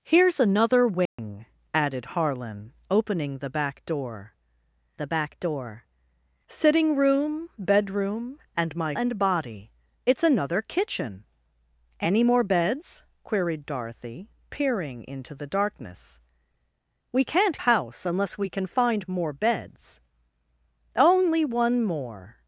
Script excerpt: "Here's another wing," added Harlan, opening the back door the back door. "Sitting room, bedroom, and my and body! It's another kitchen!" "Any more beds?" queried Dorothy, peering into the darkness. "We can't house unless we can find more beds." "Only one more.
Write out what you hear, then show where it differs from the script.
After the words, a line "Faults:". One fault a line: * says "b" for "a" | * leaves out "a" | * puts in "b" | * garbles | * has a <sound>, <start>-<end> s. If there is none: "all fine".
"Here's another wing," added Harlan, opening the back door the back door. "Sitting room, bedroom, and my and body! It's another kitchen!" "Any more beds?" queried Dorothy, peering into the darkness. "We can't house unless we can find more beds." "Only one more.
Faults:
* has a dropout, 1.1-1.2 s